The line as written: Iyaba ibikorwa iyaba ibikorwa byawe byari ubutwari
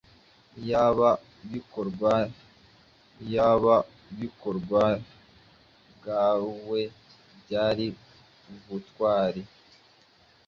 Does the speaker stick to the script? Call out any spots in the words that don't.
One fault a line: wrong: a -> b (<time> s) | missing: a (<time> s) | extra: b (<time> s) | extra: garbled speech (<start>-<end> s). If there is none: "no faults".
no faults